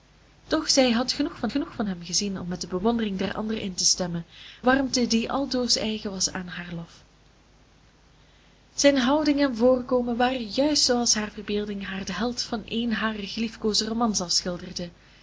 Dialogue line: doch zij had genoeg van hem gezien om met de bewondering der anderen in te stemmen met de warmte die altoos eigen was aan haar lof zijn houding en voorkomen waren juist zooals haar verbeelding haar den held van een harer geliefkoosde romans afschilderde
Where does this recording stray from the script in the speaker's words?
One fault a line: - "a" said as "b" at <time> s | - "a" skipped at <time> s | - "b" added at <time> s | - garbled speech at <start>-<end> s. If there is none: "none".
- "genoeg van" added at 1.5 s
- "met de" skipped at 4.2 s